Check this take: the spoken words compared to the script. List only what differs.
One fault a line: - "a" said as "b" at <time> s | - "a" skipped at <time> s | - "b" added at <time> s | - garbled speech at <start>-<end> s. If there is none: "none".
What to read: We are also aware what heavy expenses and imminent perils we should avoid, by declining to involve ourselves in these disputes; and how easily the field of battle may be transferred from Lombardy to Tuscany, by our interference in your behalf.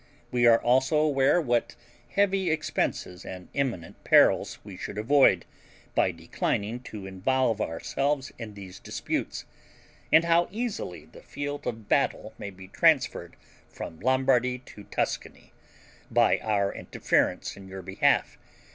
none